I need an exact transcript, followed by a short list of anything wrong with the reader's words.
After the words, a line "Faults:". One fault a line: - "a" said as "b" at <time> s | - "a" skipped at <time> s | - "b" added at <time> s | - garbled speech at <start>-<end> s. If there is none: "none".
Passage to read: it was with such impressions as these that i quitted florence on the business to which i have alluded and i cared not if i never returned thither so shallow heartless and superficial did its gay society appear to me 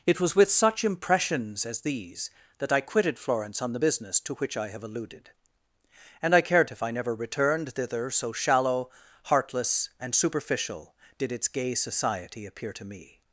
it was with such impressions as these that i quitted florence on the business to which i have alluded and i cared if i never returned thither so shallow heartless and superficial did its gay society appear to me
Faults:
- "not" skipped at 6.7 s